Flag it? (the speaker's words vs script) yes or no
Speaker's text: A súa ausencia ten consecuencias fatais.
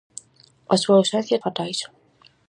yes